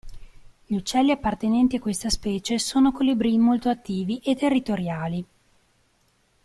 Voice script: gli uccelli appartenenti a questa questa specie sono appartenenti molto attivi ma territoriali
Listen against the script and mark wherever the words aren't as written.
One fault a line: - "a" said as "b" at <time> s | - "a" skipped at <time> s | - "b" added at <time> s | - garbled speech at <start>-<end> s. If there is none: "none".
- "questa" skipped at 2.1 s
- "appartenenti" said as "colibrì" at 2.9 s
- "ma" said as "e" at 4.2 s